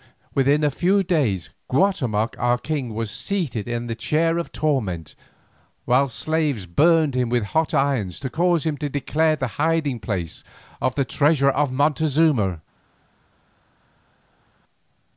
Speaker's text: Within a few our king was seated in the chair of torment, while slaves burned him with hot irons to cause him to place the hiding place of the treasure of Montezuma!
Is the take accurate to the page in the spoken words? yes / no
no